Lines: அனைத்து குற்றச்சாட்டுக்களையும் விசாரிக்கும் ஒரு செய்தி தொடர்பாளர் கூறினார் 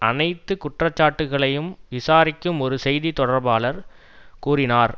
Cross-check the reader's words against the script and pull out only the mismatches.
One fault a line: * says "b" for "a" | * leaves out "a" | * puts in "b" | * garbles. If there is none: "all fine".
all fine